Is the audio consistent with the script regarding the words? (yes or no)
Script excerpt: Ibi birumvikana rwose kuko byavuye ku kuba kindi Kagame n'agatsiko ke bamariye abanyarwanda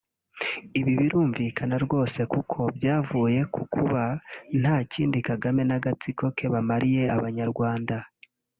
no